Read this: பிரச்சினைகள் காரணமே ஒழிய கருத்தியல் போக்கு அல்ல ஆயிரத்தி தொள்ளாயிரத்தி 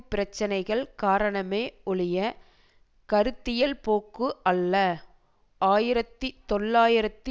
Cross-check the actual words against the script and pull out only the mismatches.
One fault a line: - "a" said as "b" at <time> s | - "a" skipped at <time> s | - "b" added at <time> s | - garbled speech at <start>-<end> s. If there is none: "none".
none